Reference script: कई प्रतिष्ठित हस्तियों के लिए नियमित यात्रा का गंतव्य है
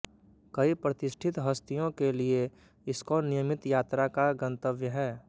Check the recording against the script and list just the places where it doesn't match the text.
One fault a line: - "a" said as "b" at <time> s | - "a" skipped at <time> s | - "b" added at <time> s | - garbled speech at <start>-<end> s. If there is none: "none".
- "इस्कॉन" added at 2.9 s